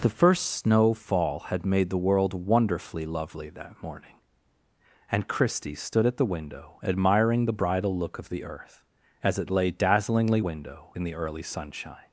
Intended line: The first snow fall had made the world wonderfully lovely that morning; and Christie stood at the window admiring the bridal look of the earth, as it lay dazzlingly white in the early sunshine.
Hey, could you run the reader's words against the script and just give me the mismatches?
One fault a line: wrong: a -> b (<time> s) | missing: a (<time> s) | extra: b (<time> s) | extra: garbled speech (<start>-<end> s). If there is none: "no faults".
wrong: white -> window (10.4 s)